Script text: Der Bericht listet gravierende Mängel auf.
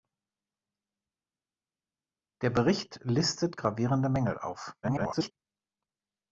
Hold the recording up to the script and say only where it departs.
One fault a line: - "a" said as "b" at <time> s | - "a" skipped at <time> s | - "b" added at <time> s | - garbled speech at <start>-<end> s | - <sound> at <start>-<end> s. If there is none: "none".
- garbled speech at 4.8-5.3 s